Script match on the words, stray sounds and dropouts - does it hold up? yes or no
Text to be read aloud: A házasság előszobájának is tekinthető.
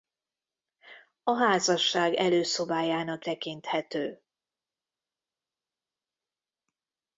no